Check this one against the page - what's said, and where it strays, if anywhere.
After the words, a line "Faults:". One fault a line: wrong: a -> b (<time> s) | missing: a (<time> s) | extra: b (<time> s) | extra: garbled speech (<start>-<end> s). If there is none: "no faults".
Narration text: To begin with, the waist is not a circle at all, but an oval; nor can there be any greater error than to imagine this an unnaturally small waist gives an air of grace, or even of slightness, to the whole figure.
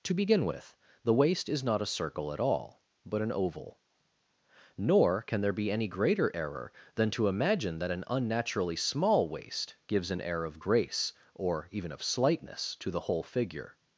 To begin with, the waist is not a circle at all, but an oval; nor can there be any greater error than to imagine that an unnaturally small waist gives an air of grace, or even of slightness, to the whole figure.
Faults:
wrong: this -> that (7.8 s)